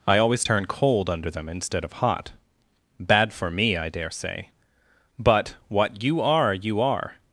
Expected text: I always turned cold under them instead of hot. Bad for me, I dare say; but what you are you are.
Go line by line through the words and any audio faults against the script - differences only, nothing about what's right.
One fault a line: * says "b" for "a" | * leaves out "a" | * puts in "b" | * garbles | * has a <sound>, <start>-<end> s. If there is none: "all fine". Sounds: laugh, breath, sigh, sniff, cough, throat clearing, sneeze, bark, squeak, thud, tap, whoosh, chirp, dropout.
* says "turn" for "turned"